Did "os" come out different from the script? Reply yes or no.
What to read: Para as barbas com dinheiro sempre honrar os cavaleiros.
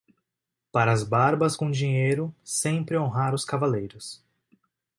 no